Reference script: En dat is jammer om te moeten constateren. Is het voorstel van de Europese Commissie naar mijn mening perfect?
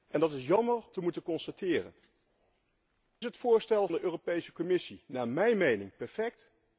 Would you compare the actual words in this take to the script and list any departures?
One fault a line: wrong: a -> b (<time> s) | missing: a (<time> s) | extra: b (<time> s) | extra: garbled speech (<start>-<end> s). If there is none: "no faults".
missing: om (0.8 s)
missing: Is (1.9 s)
missing: van (3.9 s)